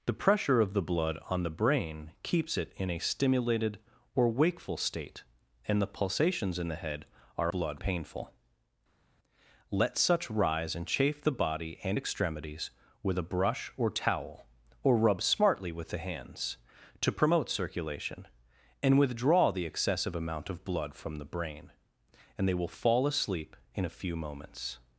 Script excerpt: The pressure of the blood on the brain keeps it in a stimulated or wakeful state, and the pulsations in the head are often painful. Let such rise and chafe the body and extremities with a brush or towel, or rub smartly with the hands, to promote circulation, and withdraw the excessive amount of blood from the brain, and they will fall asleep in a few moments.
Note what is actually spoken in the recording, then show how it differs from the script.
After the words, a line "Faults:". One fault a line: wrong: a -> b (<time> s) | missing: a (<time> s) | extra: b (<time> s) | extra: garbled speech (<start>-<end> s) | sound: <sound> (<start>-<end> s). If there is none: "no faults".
The pressure of the blood on the brain keeps it in a stimulated or wakeful state, and the pulsations in the head are blood painful. Let such rise and chafe the body and extremities with a brush or towel, or rub smartly with the hands, to promote circulation, and withdraw the excessive amount of blood from the brain, and they will fall asleep in a few moments.
Faults:
wrong: often -> blood (7.5 s)